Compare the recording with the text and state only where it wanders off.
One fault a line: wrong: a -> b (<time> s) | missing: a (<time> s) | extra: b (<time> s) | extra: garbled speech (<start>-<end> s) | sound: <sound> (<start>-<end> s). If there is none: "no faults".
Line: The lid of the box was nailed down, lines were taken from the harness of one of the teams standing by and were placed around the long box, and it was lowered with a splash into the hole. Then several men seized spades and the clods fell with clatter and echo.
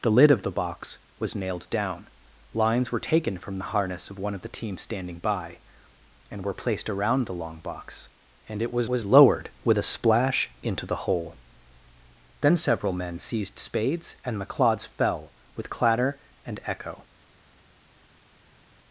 extra: was (8.9 s)